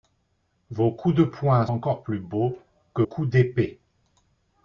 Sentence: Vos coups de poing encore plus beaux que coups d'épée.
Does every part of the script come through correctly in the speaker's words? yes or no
yes